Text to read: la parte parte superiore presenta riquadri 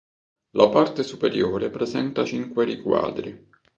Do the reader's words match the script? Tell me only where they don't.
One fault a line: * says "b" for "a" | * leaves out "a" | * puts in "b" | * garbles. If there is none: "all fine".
* leaves out "parte"
* puts in "cinque"